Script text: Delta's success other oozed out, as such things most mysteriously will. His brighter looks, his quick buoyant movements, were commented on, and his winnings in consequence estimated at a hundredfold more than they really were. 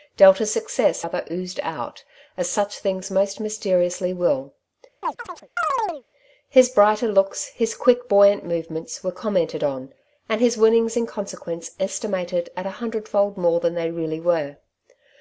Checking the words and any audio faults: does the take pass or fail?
fail